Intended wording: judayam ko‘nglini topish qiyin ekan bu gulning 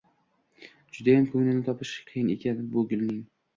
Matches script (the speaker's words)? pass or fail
pass